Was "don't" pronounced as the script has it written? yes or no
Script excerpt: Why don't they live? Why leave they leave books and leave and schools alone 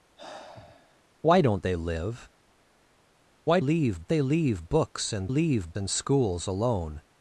yes